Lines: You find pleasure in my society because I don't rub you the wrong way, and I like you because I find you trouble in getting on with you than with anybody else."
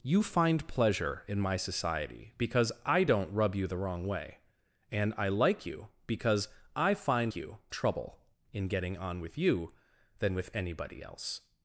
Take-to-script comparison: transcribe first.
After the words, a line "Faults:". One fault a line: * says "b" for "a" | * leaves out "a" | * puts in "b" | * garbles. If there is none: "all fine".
You find pleasure in my society because I don't rub you the wrong way, and I like you because I find you trouble in getting on with you than with anybody else."
Faults:
all fine